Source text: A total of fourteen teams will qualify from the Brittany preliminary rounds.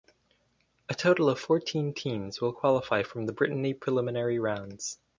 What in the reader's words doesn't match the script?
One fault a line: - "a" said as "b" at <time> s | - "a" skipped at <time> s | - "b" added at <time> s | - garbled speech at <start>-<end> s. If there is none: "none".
none